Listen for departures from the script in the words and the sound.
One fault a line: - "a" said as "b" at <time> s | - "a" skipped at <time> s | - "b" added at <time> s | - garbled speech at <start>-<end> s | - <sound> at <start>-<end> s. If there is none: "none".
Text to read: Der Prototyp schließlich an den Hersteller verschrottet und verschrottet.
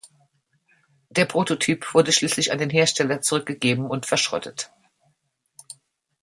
- "wurde" added at 1.9 s
- "verschrottet" said as "zurückgegeben" at 3.2 s